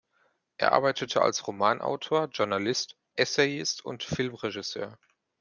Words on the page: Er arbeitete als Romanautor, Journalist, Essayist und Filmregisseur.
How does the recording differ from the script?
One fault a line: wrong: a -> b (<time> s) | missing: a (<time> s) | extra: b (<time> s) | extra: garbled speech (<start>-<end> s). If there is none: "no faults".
no faults